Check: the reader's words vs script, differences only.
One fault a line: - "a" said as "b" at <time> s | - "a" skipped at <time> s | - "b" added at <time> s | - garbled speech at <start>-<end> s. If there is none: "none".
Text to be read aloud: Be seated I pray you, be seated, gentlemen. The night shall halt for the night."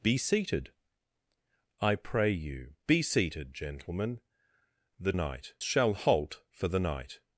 none